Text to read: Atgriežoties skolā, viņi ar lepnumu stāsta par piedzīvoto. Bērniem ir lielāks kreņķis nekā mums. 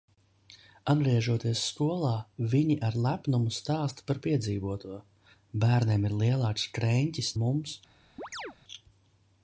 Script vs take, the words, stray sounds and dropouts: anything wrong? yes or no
yes